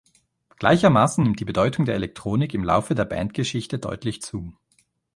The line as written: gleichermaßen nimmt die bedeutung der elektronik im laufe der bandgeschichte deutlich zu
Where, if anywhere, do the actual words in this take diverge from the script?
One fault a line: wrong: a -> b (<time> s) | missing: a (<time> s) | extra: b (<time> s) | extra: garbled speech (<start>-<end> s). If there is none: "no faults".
no faults